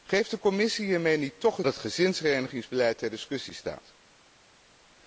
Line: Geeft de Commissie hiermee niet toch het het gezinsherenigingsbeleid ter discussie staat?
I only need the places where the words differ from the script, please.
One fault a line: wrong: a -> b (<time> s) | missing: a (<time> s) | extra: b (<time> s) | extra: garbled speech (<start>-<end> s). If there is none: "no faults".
no faults